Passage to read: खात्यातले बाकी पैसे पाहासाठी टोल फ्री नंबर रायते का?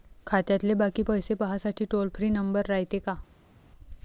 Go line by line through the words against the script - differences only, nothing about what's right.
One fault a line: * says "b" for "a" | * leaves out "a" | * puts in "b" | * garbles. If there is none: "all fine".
all fine